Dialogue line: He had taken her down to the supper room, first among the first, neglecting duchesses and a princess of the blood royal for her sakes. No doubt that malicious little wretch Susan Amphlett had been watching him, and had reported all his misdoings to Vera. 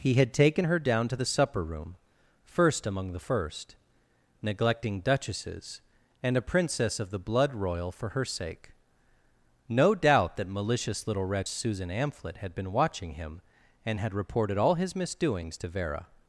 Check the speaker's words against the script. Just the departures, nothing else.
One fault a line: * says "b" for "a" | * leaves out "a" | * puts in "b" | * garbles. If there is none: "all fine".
* says "sake" for "sakes"